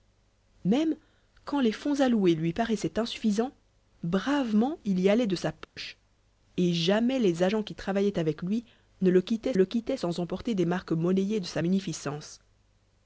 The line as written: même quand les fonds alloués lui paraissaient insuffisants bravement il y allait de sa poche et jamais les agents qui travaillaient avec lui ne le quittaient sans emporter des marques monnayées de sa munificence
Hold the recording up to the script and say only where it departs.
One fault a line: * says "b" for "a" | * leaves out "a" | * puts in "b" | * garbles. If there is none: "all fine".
* puts in "le quittaient"